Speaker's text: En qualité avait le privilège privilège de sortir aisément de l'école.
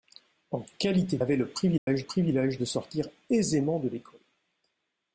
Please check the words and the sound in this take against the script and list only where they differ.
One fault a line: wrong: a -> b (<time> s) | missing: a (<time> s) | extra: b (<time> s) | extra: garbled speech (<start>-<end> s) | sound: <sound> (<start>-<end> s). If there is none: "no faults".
sound: dropout (1.8-1.9 s)